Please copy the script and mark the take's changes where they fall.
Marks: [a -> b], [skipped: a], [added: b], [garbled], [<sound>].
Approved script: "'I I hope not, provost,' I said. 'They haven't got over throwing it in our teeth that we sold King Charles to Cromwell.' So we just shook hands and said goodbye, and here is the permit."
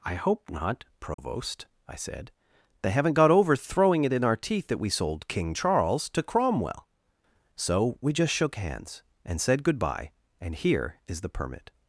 "'I [skipped: I] hope not, provost,' [dropout] I said. 'They haven't got over throwing it in our teeth that we sold King Charles to Cromwell.' So we just shook hands and said goodbye, and here is the permit."